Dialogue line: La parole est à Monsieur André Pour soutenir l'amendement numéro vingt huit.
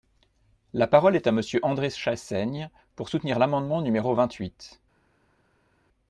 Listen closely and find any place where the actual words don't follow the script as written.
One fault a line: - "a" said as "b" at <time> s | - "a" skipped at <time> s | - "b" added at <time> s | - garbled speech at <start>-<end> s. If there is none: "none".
- "Chassaigne" added at 1.9 s